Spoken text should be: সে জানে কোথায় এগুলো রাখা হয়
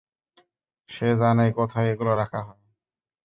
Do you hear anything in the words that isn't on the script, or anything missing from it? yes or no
no